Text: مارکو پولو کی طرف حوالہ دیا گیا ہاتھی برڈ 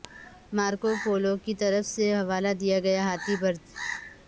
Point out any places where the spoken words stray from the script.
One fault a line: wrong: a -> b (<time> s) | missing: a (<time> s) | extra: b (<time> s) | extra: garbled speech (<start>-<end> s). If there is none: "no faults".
extra: سے (1.9 s)